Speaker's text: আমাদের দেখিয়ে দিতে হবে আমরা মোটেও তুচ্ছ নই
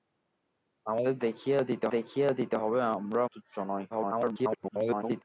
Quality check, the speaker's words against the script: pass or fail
fail